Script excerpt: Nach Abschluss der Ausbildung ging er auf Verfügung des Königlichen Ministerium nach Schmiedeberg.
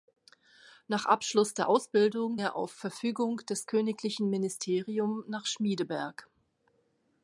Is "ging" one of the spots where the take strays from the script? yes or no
yes